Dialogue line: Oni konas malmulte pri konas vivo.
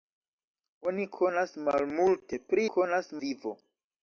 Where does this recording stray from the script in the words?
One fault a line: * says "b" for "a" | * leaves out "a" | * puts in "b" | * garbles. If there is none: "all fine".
all fine